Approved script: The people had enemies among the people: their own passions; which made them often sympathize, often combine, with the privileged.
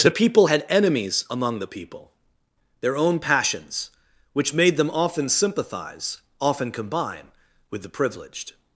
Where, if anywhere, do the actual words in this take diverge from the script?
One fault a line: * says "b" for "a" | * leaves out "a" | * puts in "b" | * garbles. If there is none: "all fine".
all fine